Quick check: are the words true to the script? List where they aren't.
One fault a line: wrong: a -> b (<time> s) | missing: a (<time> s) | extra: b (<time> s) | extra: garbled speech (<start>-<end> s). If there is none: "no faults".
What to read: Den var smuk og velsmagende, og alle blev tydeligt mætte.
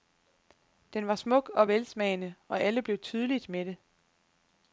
no faults